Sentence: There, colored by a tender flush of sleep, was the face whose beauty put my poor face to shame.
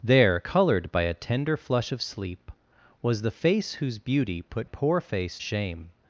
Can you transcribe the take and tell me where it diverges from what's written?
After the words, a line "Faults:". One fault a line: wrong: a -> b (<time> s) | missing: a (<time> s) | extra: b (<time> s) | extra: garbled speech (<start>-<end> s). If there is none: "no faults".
There, colored by a tender flush of sleep, was the face whose beauty put poor face shame.
Faults:
missing: my (4.7 s)
missing: to (5.4 s)